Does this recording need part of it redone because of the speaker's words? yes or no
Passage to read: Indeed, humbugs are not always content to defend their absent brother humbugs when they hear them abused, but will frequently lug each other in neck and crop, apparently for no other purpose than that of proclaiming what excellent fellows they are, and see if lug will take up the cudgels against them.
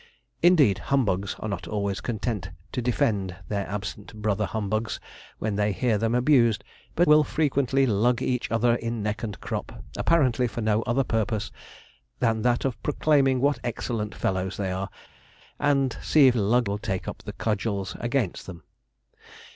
no